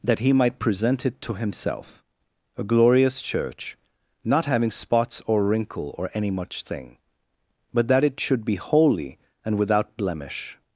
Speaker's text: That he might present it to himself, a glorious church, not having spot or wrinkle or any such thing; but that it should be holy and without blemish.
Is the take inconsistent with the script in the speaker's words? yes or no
yes